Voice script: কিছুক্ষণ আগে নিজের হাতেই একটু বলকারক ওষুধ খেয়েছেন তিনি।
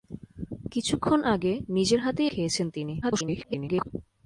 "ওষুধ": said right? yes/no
no